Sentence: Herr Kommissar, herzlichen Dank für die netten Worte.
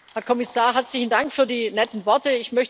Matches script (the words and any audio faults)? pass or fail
pass